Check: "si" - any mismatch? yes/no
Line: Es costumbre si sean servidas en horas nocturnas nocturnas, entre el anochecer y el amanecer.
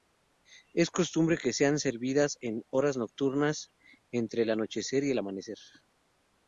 yes